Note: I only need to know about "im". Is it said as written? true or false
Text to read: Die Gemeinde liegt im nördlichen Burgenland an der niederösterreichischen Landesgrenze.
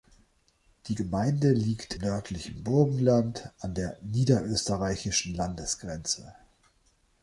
false